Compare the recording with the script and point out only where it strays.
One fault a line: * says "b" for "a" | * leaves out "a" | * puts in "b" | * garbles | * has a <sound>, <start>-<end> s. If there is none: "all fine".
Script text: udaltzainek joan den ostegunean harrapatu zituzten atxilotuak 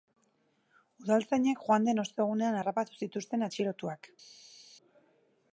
all fine